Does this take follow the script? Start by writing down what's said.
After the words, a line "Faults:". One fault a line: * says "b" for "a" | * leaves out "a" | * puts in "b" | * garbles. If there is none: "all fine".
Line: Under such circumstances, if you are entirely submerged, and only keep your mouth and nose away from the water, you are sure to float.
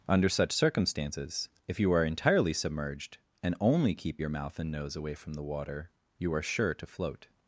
Under such circumstances, if you are entirely submerged, and only keep your mouth and nose away from the water, you are sure to float.
Faults:
all fine